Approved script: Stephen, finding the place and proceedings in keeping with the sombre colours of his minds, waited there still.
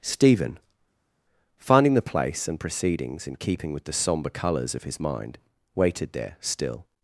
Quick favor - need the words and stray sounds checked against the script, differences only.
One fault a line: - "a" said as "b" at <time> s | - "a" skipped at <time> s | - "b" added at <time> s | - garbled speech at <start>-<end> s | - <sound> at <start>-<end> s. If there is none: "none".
- "minds" said as "mind" at 5.0 s